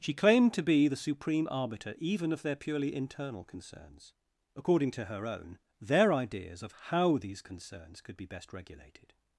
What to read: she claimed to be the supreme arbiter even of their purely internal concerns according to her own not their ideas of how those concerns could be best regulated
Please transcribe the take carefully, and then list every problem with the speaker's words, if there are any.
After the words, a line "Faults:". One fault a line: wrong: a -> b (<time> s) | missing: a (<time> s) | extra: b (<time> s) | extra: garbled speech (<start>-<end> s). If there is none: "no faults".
she claimed to be the supreme arbiter even of their purely internal concerns according to her own their ideas of how these concerns could be best regulated
Faults:
missing: not (5.6 s)
wrong: those -> these (7.2 s)